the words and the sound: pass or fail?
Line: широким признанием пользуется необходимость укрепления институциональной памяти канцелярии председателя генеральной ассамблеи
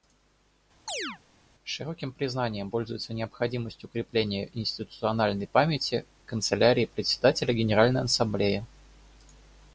fail